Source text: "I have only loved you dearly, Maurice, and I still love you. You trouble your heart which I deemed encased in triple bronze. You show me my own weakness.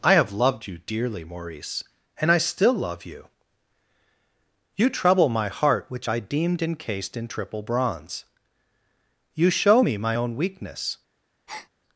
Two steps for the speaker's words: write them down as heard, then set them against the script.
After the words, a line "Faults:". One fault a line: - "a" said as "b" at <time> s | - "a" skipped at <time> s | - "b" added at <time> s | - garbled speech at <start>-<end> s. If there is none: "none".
"I have loved you dearly, Maurice, and I still love you. You trouble my heart which I deemed encased in triple bronze. You show me my own weakness.
Faults:
- "only" skipped at 0.3 s
- "your" said as "my" at 5.3 s